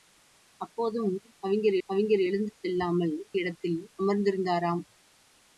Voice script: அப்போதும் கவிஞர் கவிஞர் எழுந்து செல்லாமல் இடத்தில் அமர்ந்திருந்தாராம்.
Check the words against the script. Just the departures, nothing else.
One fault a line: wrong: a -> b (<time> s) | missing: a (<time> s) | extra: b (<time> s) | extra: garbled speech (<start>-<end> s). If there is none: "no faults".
no faults